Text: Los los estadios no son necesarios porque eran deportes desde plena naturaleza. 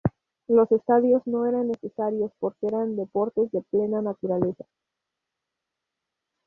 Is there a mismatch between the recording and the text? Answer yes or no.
yes